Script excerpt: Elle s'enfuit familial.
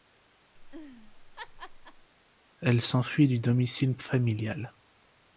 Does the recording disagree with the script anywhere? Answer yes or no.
yes